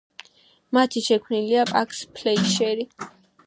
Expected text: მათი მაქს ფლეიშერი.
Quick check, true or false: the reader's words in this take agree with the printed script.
false